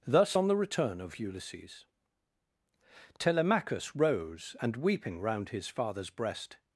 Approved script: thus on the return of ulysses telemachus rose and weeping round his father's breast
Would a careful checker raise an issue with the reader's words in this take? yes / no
no